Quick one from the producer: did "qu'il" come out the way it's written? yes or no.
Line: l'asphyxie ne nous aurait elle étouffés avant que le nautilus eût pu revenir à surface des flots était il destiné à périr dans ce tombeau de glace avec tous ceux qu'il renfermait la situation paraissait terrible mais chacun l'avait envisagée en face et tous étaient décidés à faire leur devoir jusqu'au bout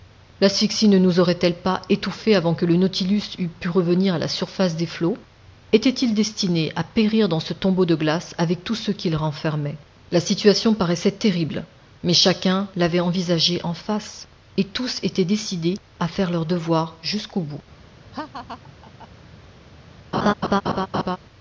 yes